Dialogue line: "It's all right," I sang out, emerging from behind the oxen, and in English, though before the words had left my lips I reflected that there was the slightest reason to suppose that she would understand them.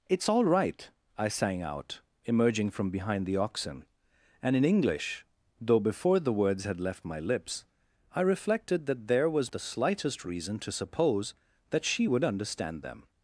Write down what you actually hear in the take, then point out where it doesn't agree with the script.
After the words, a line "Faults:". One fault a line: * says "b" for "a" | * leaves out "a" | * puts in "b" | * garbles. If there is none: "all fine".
"It's all right," I sang out, emerging from behind the oxen, and in English, though before the words had left my lips I reflected that there was the slightest reason to suppose that she would understand them.
Faults:
all fine